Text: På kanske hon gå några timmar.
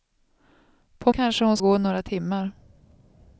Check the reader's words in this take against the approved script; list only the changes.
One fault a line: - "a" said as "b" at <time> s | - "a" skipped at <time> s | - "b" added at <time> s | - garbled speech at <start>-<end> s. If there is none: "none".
none